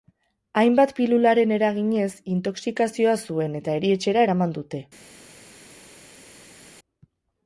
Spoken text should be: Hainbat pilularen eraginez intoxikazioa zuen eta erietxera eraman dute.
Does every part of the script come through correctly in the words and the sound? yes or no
yes